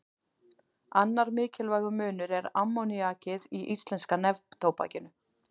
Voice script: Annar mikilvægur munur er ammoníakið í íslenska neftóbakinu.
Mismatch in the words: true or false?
false